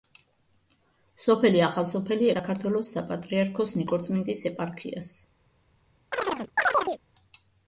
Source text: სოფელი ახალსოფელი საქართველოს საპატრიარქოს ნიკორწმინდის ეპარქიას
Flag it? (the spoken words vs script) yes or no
no